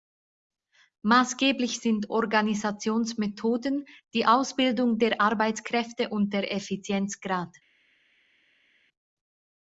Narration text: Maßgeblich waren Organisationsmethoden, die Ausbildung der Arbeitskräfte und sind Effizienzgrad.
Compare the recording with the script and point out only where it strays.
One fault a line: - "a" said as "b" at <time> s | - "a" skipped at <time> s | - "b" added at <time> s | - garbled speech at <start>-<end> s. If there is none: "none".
- "waren" said as "sind" at 1.8 s
- "sind" said as "der" at 6.3 s